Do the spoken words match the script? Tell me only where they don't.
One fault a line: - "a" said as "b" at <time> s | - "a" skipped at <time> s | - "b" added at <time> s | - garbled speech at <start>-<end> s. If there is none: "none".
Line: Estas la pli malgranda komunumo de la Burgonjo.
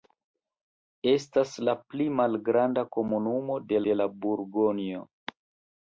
- "de" added at 3.9 s